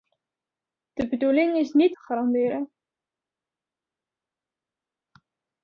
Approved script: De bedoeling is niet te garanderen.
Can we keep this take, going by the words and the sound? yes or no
yes